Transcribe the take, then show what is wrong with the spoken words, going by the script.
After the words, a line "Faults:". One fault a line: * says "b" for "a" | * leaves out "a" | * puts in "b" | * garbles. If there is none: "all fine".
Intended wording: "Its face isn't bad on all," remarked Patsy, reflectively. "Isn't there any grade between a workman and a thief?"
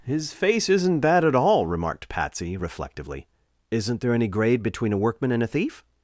"His face isn't bad at all," remarked Patsy, reflectively. "Isn't there any grade between a workman and a thief?"
Faults:
* says "His" for "Its"
* says "at" for "on"